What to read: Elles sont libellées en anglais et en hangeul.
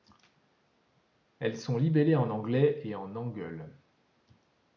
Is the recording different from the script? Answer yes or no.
no